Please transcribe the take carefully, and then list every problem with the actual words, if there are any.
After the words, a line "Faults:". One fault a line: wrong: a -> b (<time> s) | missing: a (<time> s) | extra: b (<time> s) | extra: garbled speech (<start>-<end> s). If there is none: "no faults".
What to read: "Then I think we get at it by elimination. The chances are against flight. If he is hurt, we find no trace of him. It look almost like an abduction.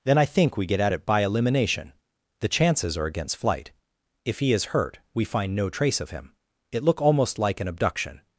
"Then I think we get at it by elimination. The chances are against flight. If he is hurt, we find no trace of him. It look almost like an abduction.
Faults:
no faults